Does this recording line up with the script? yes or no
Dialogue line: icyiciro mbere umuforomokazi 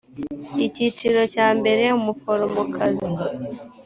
no